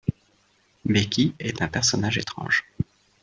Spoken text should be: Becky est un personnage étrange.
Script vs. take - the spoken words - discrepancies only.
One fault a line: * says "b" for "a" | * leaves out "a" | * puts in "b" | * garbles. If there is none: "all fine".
all fine